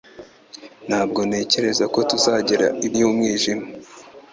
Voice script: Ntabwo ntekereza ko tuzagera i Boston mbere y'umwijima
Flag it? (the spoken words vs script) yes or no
yes